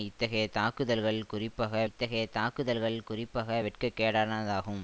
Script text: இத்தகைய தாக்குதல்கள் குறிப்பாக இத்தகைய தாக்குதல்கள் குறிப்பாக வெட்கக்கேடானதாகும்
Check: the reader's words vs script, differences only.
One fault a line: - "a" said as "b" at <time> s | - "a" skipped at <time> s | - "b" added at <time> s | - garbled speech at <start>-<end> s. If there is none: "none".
none